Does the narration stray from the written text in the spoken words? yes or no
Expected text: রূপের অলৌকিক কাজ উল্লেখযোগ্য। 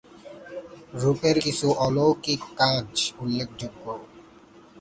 yes